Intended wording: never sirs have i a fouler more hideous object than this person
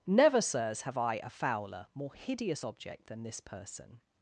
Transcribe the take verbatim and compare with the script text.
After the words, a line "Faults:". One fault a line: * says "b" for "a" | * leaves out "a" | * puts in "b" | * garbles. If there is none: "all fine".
never sirs have i a fouler more hideous object than this person
Faults:
all fine